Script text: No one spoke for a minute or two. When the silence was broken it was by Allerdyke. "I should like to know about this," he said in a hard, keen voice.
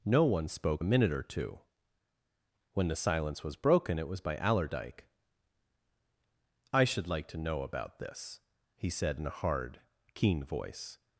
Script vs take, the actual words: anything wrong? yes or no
yes